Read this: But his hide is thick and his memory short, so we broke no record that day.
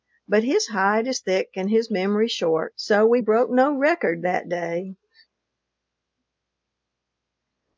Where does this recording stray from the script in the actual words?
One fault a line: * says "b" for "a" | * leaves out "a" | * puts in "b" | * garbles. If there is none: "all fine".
all fine